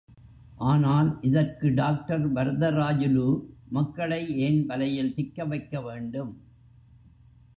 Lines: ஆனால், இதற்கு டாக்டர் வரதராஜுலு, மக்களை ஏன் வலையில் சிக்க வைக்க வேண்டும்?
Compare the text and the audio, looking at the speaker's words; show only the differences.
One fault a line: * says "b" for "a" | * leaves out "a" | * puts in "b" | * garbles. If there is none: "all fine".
all fine